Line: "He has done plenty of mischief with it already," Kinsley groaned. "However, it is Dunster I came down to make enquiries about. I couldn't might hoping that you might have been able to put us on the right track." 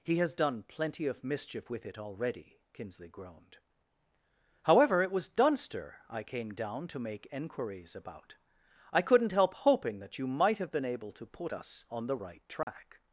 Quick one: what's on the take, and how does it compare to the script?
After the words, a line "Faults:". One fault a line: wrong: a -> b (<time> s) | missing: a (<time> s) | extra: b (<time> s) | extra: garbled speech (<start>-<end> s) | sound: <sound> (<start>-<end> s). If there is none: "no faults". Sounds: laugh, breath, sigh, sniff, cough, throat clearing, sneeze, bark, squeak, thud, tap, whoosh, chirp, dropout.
"He has done plenty of mischief with it already," Kinsley groaned. "However, it was Dunster I came down to make enquiries about. I couldn't help hoping that you might have been able to put us on the right track."
Faults:
wrong: is -> was (5.1 s)
wrong: might -> help (9.3 s)
sound: dropout (12.6-12.7 s)